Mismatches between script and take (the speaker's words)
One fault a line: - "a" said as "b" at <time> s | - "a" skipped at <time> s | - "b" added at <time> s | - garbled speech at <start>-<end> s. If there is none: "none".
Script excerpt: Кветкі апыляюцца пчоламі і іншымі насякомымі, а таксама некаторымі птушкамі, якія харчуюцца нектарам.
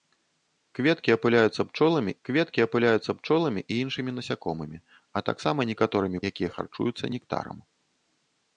- "кветкі апыляюцца пчоламі" added at 2.3 s
- "птушкамі" skipped at 6.2 s